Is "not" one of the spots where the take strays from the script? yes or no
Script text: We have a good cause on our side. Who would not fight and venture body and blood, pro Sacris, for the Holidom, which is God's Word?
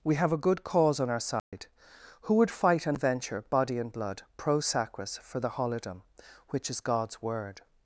yes